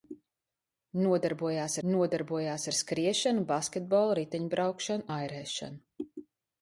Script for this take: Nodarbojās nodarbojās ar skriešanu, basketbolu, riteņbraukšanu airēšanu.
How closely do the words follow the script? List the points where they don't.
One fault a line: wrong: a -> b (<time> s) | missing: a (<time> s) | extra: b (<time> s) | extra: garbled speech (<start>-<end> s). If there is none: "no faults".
no faults